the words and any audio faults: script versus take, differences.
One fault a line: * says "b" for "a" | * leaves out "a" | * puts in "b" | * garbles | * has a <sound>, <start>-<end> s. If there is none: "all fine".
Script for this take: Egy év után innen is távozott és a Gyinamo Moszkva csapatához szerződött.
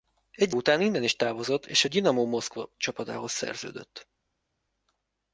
* leaves out "év"